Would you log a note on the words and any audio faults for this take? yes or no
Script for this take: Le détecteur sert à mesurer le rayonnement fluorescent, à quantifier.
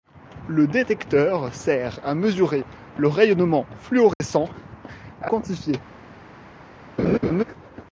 yes